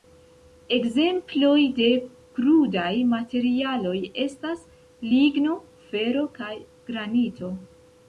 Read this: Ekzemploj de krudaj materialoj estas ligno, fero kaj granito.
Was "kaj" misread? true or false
false